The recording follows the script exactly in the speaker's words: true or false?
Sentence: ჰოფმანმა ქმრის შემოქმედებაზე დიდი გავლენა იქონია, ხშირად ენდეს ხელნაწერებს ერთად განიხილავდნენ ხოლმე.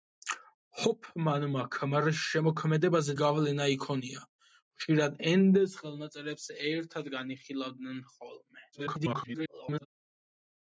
false